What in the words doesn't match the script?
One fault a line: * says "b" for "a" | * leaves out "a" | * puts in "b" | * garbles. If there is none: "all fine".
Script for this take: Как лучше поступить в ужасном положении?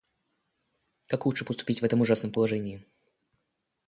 * puts in "этом"